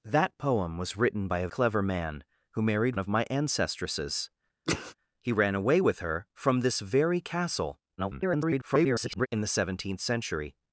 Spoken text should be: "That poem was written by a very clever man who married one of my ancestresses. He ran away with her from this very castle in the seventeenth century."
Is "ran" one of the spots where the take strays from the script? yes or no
no